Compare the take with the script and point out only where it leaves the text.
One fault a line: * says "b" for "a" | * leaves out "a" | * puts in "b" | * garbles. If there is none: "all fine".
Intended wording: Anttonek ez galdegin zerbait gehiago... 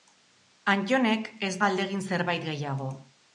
all fine